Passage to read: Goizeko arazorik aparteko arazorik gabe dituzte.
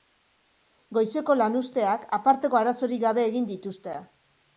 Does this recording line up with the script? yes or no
no